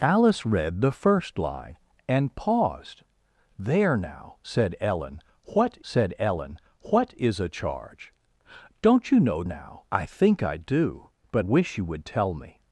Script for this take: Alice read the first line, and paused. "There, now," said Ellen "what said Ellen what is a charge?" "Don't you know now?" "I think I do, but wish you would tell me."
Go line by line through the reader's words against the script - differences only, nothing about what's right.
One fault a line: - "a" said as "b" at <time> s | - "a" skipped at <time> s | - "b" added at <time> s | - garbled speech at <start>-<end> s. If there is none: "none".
none